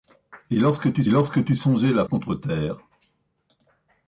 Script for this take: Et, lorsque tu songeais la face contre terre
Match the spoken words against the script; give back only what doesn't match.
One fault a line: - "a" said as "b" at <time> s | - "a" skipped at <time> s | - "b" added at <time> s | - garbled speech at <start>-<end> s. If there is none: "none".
- "lorsque tu" added at 1.1 s
- "face" skipped at 2.0 s